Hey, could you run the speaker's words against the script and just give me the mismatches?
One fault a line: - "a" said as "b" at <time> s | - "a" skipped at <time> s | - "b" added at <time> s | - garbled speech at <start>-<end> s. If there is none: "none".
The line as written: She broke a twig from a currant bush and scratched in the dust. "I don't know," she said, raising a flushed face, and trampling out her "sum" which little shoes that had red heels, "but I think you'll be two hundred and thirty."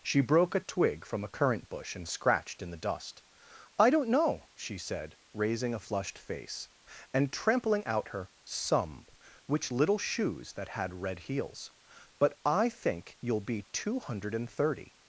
none